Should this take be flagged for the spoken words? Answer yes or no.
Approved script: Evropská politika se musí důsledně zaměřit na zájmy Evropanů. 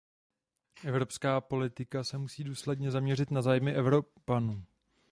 no